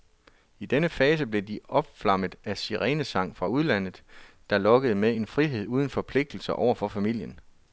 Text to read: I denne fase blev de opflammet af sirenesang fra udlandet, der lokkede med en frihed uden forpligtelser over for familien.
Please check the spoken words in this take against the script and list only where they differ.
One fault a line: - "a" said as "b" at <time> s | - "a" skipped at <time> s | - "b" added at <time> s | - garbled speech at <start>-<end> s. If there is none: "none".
none